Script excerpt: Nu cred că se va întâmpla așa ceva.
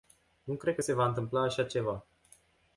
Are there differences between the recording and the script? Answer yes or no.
no